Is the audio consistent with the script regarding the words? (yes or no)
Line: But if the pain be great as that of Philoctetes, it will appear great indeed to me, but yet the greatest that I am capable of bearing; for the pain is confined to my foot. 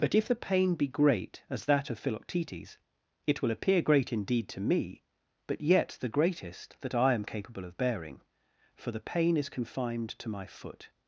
yes